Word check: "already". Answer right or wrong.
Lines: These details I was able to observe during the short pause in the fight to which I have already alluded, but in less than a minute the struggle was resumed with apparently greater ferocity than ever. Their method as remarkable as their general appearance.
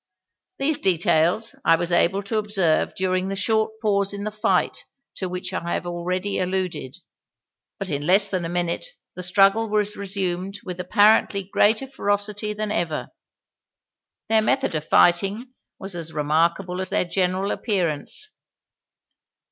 right